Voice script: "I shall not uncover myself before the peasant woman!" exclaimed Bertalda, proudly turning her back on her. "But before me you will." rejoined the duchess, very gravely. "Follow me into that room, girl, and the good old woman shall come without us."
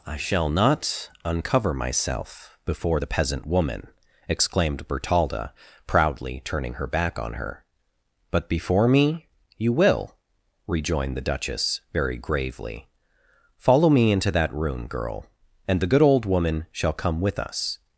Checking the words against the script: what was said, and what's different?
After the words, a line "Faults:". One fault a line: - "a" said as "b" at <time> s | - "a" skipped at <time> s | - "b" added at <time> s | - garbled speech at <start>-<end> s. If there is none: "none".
"I shall not uncover myself before the peasant woman!" exclaimed Bertalda, proudly turning her back on her. "But before me you will." rejoined the duchess, very gravely. "Follow me into that room, girl, and the good old woman shall come with us."
Faults:
- "without" said as "with" at 17.2 s